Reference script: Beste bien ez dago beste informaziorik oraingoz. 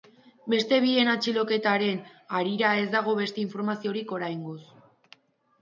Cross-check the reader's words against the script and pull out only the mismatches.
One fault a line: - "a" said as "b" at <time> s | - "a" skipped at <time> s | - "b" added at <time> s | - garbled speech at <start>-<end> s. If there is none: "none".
- "atxiloketaren harira" added at 1.1 s